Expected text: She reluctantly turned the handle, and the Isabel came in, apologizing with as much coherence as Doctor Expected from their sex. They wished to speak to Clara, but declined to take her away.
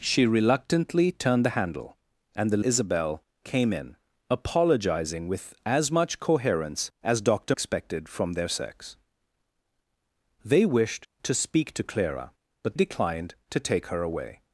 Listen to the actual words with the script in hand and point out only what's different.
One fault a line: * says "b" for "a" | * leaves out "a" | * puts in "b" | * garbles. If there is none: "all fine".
all fine